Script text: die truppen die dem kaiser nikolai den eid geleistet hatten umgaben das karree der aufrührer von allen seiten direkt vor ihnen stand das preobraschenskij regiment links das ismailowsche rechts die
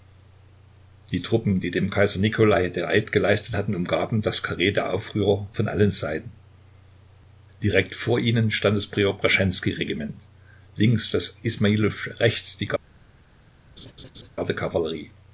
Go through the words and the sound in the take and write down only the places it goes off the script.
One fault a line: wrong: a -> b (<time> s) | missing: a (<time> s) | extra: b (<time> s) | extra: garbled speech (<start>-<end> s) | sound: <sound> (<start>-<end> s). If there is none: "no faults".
sound: laugh (13.8-14.3 s)